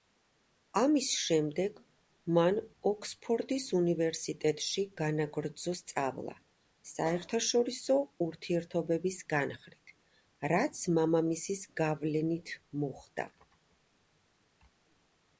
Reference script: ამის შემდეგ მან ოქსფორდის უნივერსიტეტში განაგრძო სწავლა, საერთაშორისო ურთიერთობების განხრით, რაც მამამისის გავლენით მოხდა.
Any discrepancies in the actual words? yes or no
no